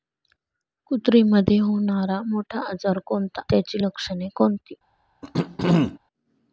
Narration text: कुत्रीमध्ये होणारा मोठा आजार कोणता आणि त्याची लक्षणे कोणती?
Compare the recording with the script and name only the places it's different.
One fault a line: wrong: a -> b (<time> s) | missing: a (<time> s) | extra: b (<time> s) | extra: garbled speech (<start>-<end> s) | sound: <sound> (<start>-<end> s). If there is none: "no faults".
missing: आणि (3.4 s)
sound: throat clearing (5.2-6.0 s)